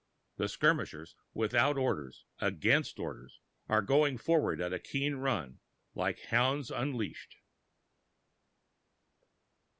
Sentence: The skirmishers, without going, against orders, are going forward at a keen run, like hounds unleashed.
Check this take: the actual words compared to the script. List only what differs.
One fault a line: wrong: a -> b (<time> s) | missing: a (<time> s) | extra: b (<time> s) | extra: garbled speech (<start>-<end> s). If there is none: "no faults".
wrong: going -> orders (1.8 s)